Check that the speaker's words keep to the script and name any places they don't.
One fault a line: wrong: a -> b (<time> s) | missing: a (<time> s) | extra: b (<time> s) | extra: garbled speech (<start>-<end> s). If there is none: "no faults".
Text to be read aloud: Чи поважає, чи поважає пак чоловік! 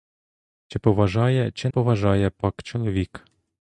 no faults